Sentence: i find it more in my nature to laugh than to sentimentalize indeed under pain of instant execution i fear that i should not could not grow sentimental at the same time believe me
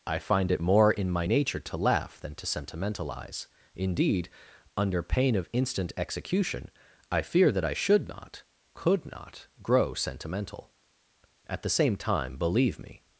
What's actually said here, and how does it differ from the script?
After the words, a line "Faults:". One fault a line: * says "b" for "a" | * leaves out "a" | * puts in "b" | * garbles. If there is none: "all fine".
i find it more in my nature to laugh than to sentimentalize indeed under pain of instant execution i fear that i should not could not grow sentimental at the same time believe me
Faults:
all fine